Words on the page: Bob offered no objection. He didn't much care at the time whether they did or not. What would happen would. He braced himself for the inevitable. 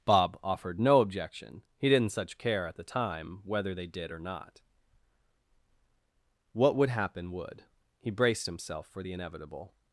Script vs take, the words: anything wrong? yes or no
yes